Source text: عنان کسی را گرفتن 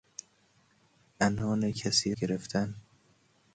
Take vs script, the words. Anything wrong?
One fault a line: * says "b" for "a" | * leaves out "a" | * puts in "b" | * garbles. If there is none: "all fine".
* leaves out "را"